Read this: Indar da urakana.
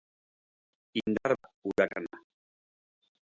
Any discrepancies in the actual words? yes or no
no